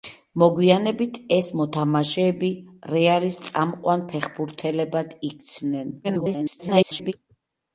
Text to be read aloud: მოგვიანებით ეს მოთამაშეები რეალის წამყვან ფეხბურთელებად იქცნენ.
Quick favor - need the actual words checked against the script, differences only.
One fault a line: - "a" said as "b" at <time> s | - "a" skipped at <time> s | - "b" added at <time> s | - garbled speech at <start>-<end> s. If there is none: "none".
- garbled speech at 6.0-7.1 s